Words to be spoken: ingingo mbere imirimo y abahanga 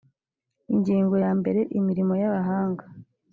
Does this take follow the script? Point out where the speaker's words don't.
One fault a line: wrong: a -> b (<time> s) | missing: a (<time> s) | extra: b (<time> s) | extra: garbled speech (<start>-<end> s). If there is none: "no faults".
extra: ya (1.2 s)